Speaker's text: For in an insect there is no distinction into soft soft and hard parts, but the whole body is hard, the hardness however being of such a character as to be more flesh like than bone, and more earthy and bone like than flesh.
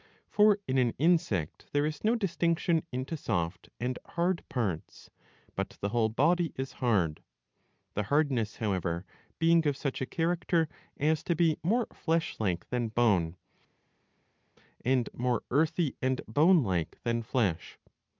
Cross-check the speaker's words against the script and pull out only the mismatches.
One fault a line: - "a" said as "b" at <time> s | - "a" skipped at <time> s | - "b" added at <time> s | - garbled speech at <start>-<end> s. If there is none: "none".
- "soft" skipped at 3.7 s